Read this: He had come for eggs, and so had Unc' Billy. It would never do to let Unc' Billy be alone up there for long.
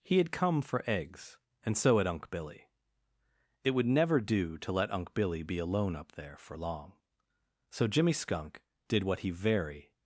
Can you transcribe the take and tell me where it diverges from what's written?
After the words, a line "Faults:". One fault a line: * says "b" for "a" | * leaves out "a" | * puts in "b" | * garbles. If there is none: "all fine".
He had come for eggs, and so had Unc' Billy. It would never do to let Unc' Billy be alone up there for long. So Jimmy Skunk did what he very
Faults:
* puts in "So Jimmy Skunk did what he very"